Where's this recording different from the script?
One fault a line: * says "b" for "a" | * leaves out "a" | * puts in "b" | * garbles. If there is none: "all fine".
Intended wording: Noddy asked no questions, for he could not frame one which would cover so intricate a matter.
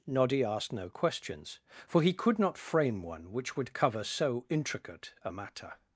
all fine